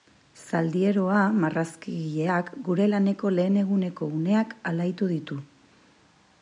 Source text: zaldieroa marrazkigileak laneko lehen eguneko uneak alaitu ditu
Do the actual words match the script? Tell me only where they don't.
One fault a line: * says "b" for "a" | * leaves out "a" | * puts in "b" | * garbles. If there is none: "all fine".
* puts in "gure"